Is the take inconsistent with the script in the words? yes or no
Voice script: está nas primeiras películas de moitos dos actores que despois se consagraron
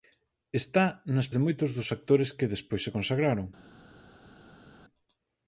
yes